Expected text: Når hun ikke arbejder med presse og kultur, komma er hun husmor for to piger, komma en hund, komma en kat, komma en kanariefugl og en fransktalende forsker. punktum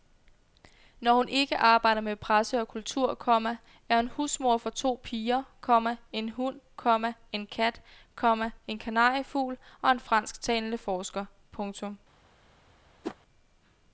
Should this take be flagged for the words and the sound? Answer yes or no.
yes